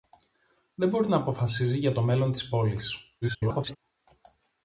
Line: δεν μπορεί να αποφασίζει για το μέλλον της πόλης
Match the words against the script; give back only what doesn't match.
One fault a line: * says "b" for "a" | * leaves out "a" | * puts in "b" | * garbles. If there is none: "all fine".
* garbles